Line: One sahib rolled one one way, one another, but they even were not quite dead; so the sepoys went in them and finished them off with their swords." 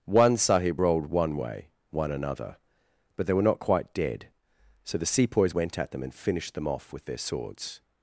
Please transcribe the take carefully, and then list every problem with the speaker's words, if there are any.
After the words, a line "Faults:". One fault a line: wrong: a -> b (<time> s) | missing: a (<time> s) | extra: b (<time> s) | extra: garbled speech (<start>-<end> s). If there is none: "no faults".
One sahib rolled one way, one another, but they were not quite dead; so the sepoys went at them and finished them off with their swords."
Faults:
missing: one (1.4 s)
missing: even (3.3 s)
wrong: in -> at (5.8 s)